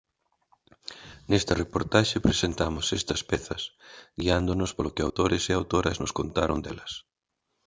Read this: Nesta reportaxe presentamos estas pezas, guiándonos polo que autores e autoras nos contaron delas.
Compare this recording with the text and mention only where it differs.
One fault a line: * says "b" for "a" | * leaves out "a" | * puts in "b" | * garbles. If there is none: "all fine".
all fine